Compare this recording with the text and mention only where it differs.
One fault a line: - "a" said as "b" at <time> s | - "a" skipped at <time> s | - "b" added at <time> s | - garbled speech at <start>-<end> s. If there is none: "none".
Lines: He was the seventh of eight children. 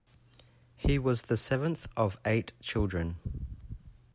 none